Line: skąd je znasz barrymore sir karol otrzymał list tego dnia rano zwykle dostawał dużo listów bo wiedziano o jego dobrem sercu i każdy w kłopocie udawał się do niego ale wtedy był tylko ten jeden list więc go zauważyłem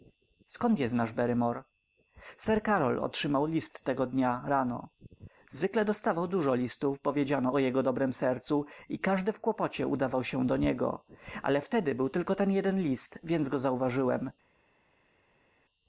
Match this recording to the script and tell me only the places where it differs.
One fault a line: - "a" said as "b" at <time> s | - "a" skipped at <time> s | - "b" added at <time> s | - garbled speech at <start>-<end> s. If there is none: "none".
none